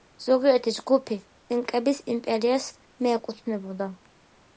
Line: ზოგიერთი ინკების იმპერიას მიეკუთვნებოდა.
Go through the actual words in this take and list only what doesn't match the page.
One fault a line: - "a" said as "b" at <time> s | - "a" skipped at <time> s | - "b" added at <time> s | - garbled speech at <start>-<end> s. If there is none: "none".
- "ჯგუფი" added at 0.7 s